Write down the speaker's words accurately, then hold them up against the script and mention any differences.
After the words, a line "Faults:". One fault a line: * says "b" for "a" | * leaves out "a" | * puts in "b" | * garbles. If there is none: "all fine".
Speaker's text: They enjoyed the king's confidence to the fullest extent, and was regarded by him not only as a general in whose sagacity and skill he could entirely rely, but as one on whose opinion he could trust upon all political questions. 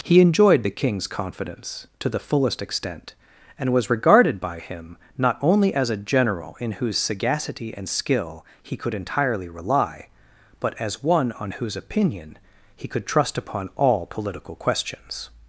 He enjoyed the king's confidence to the fullest extent, and was regarded by him not only as a general in whose sagacity and skill he could entirely rely, but as one on whose opinion he could trust upon all political questions.
Faults:
* says "He" for "They"